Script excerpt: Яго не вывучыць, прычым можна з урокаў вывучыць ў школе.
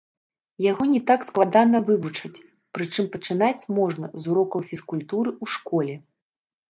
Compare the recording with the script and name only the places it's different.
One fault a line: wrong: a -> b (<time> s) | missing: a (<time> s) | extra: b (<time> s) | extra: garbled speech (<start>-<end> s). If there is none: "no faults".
extra: так складана (1.1 s)
extra: пачынаць (3.2 s)
wrong: вывучыць -> фізкультуры (4.7 s)